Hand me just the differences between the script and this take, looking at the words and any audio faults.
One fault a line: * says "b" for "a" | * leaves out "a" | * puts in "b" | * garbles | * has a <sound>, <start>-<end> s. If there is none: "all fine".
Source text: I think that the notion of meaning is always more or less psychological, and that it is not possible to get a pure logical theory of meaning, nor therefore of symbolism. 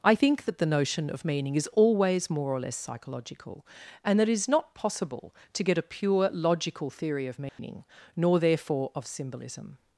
* has a dropout, 7.5-7.6 s